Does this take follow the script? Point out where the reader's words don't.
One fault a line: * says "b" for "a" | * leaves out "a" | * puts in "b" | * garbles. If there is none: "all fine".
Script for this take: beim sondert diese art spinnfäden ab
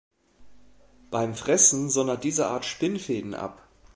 * puts in "fressen"